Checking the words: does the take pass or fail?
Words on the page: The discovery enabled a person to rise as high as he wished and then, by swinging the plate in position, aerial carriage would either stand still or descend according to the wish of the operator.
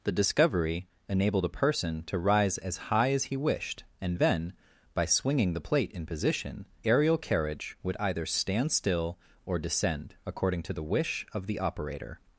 pass